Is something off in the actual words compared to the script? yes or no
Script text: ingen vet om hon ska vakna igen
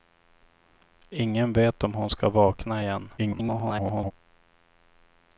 yes